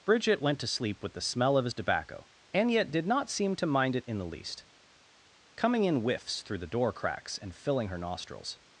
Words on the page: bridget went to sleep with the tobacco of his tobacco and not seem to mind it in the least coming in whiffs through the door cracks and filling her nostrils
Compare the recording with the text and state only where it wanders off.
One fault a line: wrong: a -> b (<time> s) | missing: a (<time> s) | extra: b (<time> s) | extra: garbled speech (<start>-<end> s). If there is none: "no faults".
wrong: tobacco -> smell (1.2 s)
extra: yet did (2.7 s)